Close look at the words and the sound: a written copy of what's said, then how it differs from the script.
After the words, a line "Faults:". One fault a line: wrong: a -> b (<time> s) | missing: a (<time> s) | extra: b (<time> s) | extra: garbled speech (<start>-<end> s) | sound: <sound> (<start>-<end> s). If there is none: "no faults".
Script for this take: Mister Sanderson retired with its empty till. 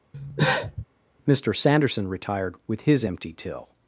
Mister Sanderson retired with his empty till.
Faults:
sound: cough (0.1-0.9 s)
wrong: its -> his (2.8 s)